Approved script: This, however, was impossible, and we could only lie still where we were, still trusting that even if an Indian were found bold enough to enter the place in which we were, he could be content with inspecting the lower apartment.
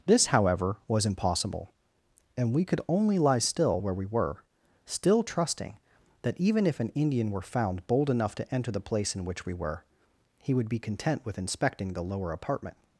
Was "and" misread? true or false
false